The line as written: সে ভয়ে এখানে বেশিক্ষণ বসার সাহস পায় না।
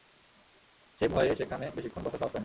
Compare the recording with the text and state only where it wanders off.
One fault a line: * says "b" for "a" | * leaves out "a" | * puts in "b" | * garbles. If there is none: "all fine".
* says "সেখানে" for "এখানে"